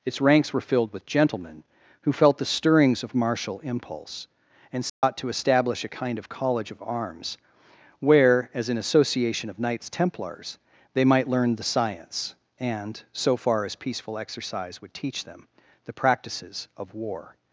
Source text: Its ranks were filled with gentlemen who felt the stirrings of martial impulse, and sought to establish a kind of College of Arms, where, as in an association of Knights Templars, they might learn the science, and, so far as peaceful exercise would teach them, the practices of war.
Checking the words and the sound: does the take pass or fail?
fail